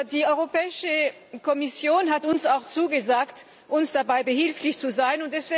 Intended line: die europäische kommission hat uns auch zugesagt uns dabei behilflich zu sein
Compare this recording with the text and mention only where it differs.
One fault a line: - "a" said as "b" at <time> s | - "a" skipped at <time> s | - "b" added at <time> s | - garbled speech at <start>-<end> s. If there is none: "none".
none